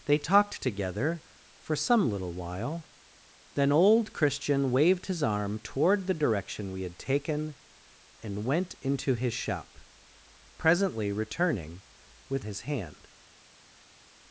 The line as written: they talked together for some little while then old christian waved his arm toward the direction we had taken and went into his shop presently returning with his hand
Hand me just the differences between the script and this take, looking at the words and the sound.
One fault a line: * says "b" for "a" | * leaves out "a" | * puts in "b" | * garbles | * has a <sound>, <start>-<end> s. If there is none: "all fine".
all fine